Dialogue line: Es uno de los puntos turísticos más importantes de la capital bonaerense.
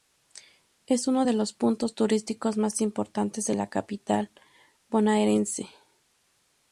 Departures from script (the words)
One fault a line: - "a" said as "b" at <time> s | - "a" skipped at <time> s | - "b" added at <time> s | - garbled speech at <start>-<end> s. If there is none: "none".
none